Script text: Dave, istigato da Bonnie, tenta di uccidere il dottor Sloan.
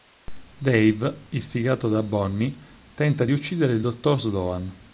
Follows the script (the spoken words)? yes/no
yes